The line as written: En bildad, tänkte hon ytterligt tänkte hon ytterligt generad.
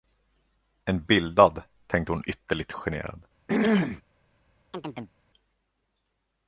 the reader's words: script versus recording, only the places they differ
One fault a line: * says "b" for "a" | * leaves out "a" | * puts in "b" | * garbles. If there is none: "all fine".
* leaves out "tänkte hon ytterligt"